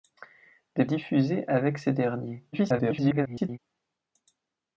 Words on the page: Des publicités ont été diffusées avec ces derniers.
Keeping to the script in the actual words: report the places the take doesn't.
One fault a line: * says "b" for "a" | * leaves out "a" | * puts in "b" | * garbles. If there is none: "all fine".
* leaves out "publicités ont été"
* garbles